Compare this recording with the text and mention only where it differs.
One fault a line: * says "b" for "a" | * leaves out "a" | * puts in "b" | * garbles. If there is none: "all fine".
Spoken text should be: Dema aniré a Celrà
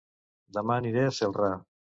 all fine